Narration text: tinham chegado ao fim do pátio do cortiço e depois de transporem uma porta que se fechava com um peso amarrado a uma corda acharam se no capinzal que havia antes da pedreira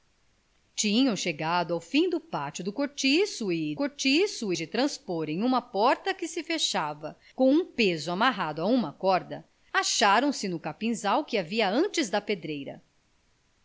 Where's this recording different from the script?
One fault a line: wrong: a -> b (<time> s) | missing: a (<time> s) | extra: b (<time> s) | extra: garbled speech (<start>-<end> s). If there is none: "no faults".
wrong: depois -> cortiço (3.7 s)